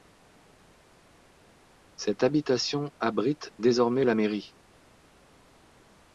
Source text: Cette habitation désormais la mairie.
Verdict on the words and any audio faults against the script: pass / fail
fail